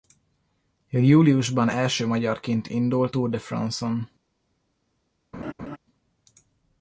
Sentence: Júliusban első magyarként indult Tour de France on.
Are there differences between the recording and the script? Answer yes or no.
no